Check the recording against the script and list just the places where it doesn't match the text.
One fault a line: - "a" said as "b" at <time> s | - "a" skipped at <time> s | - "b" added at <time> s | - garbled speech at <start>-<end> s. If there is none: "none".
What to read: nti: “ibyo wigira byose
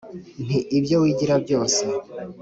none